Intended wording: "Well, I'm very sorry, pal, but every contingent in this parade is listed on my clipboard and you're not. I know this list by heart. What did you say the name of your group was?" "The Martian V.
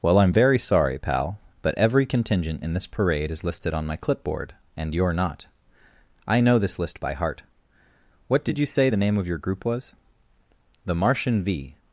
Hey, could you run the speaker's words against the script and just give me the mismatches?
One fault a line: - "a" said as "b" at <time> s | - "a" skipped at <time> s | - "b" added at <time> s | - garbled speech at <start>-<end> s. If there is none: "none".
none